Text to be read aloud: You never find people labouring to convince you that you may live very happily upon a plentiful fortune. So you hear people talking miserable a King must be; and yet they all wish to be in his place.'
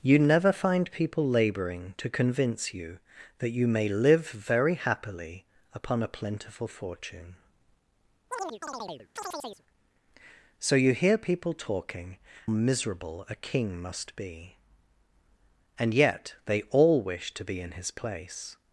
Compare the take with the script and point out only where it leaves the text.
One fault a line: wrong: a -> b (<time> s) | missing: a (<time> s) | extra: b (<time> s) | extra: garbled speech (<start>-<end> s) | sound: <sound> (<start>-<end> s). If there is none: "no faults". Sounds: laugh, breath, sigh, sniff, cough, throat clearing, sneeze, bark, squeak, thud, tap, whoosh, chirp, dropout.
sound: chirp (8.3-9.6 s)